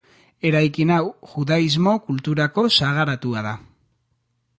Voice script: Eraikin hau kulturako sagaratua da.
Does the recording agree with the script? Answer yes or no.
no